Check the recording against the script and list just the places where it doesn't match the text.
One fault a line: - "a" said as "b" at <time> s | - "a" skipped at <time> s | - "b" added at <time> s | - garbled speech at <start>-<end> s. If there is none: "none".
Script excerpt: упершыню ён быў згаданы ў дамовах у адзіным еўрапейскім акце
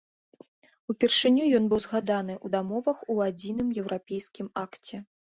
none